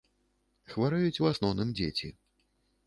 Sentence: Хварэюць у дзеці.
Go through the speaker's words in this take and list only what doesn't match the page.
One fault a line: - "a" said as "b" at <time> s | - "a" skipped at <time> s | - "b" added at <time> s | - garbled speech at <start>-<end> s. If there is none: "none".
- "асноўным" added at 1.3 s